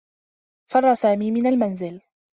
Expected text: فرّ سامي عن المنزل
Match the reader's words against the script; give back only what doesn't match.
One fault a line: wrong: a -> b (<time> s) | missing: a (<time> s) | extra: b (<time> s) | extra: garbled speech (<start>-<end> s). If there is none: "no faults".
wrong: عن -> من (1.3 s)